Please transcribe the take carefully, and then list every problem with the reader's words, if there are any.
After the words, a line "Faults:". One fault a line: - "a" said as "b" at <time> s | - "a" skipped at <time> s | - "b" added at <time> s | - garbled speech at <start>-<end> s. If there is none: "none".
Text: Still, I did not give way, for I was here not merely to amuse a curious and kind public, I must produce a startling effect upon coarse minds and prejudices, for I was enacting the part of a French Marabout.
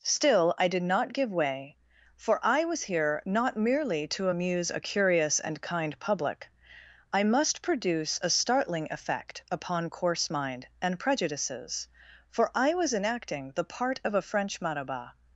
Still, I did not give way, for I was here not merely to amuse a curious and kind public, I must produce a startling effect upon coarse mind and prejudices, for I was enacting the part of a French Marabout.
Faults:
- "minds" said as "mind" at 10.3 s